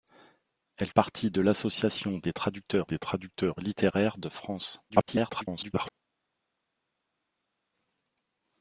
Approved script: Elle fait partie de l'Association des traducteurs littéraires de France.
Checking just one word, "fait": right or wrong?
wrong